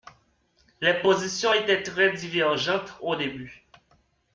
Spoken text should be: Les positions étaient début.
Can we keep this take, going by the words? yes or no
no